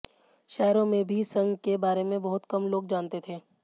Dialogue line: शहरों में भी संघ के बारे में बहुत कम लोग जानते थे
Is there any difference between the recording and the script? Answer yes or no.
no